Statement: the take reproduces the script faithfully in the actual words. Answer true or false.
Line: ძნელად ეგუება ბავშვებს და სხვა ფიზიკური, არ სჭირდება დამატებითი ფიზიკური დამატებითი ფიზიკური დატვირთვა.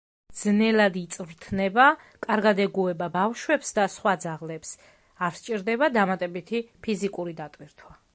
false